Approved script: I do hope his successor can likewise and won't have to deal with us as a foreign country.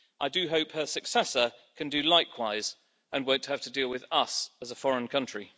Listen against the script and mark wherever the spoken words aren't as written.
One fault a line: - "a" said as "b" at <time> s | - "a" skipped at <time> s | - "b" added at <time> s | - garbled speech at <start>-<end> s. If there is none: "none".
- "his" said as "her" at 0.7 s
- "do" added at 1.9 s